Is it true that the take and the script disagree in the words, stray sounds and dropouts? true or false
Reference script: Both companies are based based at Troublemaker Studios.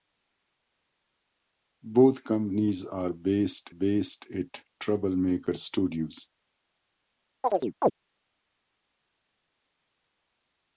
true